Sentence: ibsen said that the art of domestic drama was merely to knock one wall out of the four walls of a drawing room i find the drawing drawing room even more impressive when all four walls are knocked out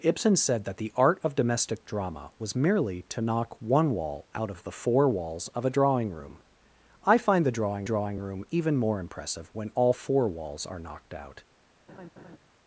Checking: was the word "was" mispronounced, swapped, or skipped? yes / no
no